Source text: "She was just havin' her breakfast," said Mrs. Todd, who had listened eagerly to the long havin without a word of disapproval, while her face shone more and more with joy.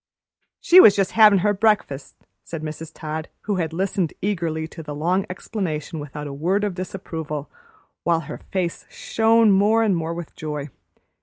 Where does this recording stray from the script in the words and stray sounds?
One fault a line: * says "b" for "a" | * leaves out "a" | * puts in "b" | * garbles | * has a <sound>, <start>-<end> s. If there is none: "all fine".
* says "explanation" for "havin"